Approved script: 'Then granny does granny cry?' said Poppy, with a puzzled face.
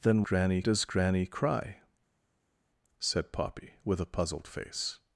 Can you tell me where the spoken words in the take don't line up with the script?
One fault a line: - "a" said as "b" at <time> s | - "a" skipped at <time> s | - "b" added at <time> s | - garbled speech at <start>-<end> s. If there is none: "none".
none